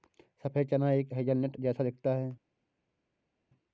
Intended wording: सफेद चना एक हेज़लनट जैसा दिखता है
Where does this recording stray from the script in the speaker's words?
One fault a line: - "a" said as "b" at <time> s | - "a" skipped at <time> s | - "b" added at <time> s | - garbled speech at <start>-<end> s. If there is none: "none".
none